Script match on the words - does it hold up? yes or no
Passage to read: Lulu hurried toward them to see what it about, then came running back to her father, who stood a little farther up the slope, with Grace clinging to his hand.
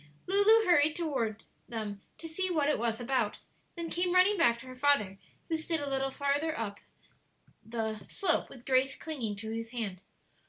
no